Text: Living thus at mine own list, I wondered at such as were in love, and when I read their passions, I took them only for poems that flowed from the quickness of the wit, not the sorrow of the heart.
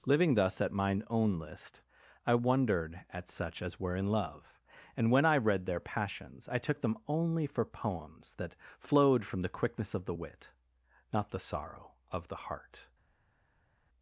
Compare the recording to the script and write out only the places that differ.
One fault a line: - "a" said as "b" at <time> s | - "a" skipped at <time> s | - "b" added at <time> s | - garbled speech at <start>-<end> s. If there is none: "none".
none